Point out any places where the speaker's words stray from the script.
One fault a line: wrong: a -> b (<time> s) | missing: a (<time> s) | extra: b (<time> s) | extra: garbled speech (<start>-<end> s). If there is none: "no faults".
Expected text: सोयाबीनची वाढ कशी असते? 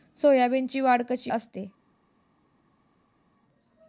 no faults